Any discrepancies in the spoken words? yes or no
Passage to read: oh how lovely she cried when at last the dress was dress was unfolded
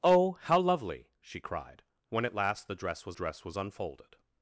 no